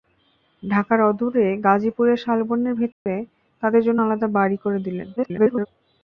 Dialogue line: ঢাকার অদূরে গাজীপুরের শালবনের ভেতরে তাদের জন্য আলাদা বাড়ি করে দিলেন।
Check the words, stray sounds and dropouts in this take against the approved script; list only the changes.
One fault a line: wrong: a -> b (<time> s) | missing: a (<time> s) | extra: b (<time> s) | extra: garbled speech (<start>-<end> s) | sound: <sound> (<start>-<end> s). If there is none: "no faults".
sound: dropout (2.9-3.1 s)
extra: garbled speech (5.2-5.7 s)